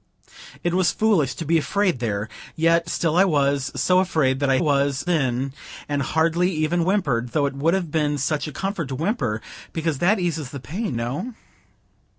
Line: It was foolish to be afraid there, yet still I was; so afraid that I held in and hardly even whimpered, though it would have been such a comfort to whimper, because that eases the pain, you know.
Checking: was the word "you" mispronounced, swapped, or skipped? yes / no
yes